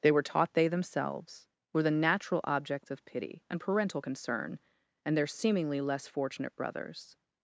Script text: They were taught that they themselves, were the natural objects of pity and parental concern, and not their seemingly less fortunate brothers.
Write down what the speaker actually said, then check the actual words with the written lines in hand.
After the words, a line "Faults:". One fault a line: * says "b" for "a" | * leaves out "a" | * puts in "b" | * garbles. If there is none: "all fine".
They were taught they themselves, were the natural objects of pity and parental concern, and their seemingly less fortunate brothers.
Faults:
* leaves out "that"
* leaves out "not"